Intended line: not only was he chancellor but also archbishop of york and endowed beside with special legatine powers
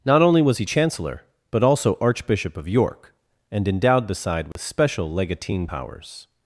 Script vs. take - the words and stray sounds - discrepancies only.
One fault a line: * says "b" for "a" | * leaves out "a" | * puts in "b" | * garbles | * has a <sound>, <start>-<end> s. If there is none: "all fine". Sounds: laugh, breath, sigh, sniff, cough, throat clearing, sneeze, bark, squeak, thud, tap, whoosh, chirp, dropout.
* has a dropout, 4.5-4.6 s